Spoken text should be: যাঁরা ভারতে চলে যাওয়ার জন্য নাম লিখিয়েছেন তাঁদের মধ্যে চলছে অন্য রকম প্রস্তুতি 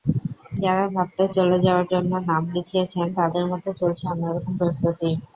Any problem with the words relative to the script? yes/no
no